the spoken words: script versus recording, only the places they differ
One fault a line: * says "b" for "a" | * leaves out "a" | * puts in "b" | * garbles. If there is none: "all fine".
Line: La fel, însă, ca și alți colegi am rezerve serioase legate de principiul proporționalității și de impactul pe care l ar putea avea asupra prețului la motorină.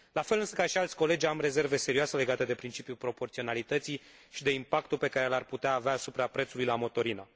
all fine